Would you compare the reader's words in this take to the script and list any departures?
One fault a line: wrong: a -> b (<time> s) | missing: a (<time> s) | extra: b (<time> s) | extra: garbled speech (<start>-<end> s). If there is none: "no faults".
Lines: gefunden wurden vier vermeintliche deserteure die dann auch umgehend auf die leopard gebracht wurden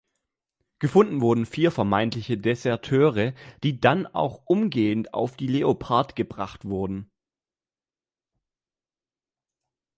no faults